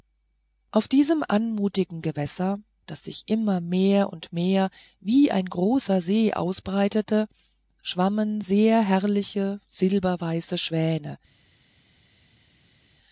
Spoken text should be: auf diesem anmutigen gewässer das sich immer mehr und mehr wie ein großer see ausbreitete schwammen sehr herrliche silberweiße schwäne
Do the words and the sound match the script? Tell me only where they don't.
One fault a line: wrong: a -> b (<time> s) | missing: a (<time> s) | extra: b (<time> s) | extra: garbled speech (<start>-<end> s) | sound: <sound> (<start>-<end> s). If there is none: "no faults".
no faults